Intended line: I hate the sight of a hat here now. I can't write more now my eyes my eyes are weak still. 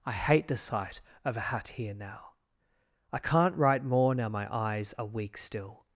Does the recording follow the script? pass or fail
fail